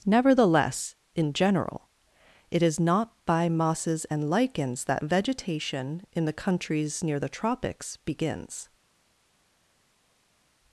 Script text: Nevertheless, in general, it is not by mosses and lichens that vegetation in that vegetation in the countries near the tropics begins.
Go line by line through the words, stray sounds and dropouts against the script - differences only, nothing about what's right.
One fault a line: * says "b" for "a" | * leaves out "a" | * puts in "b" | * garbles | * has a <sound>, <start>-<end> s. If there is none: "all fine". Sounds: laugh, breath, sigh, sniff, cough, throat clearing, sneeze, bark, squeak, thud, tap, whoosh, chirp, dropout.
* leaves out "that vegetation in"